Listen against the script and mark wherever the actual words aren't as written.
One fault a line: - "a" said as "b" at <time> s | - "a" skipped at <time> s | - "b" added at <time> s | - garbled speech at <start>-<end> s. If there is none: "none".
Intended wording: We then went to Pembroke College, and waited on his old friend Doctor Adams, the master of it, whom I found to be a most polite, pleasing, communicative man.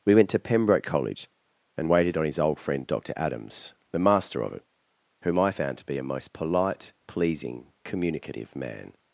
- "then" skipped at 0.1 s